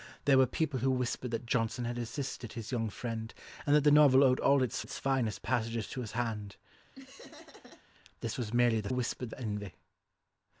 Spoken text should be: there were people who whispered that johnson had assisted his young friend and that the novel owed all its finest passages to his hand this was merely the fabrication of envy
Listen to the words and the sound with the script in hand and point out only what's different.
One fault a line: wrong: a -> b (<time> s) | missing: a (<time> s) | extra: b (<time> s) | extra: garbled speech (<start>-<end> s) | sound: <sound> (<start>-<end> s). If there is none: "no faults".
extra: its (4.8 s)
sound: laugh (6.9-7.8 s)
wrong: fabrication -> whispered (8.9 s)